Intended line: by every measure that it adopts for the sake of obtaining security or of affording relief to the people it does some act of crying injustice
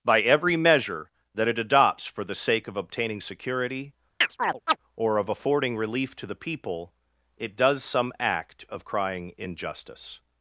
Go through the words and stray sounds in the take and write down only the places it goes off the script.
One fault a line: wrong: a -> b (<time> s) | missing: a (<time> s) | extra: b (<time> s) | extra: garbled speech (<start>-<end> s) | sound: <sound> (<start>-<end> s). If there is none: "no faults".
sound: chirp (4.2-4.8 s)